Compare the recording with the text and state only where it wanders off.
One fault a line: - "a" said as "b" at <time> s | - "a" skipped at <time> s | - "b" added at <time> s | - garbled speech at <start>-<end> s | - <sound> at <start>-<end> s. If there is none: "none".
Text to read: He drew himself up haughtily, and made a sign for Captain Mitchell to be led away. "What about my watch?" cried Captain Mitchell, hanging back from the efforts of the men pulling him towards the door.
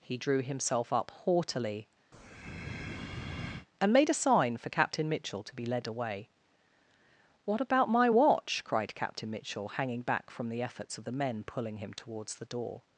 - breath at 2.1-3.7 s